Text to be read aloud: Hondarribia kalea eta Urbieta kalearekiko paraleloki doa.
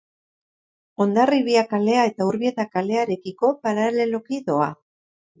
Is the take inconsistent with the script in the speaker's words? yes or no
no